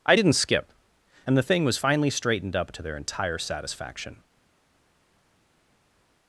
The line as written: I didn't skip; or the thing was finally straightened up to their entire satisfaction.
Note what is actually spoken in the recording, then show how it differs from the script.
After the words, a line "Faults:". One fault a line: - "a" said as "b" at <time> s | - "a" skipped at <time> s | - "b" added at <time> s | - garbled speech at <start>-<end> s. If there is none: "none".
I didn't skip; and the thing was finally straightened up to their entire satisfaction.
Faults:
- "or" said as "and" at 1.3 s